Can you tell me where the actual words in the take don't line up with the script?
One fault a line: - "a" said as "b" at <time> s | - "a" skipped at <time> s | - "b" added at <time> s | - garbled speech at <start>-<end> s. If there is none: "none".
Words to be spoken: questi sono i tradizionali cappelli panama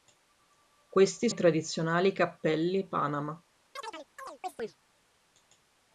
- "sono" skipped at 1.3 s